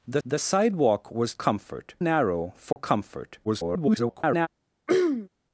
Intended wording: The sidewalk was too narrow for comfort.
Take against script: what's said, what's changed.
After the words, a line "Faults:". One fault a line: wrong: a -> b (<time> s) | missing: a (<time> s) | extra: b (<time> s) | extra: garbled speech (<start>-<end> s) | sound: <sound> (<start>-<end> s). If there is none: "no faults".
The the sidewalk was comfort narrow for comfort. [garbled]
Faults:
extra: the (0.2 s)
wrong: too -> comfort (1.4 s)
sound: dropout (2.7-2.8 s)
extra: garbled speech (3.4-4.5 s)
sound: throat clearing (4.9-5.3 s)